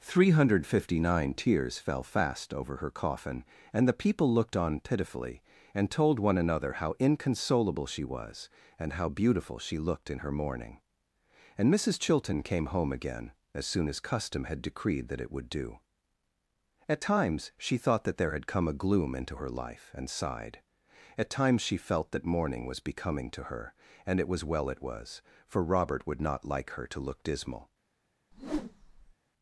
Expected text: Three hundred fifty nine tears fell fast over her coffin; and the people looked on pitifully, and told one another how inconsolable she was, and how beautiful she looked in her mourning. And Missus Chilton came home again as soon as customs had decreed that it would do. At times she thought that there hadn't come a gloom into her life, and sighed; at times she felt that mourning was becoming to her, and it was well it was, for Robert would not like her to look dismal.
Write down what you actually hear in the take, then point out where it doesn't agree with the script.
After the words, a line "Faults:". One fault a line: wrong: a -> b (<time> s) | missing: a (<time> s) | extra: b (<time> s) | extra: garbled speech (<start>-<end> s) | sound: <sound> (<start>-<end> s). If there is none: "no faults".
Three hundred fifty nine tears fell fast over her coffin; and the people looked on pitifully, and told one another how inconsolable she was, and how beautiful she looked in her mourning. And Missus Chilton came home again as soon as custom had decreed that it would do. At times she thought that there had come a gloom into her life, and sighed; at times she felt that mourning was becoming to her, and it was well it was, for Robert would not like her to look dismal.
Faults:
wrong: customs -> custom (14.0 s)
wrong: hadn't -> had (18.3 s)
sound: whoosh (28.3-29.1 s)